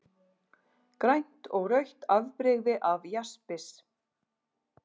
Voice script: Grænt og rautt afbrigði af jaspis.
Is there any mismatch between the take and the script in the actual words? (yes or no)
no